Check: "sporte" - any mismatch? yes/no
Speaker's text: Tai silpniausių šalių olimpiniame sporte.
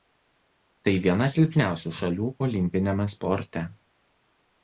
no